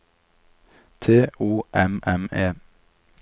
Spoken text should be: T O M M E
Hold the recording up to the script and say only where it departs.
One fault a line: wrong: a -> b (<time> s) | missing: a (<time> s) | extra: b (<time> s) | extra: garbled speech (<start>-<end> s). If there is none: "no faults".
no faults